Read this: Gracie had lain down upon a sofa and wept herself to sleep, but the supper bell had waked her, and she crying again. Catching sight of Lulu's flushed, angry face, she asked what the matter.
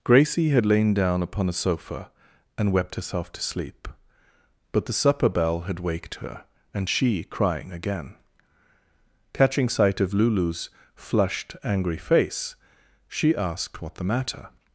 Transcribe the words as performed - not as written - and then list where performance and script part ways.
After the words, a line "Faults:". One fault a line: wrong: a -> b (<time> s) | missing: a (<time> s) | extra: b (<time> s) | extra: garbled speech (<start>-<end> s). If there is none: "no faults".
Gracie had lain down upon a sofa and wept herself to sleep, but the supper bell had waked her, and she crying again. Catching sight of Lulu's flushed, angry face, she asked what the matter.
Faults:
no faults